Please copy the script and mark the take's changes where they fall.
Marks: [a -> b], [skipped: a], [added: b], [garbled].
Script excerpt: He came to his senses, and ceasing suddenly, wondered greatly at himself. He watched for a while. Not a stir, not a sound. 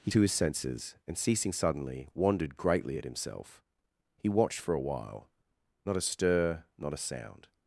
He [skipped: came] to his senses, and ceasing suddenly, wondered greatly at himself. He watched for a while. Not a stir, not a sound.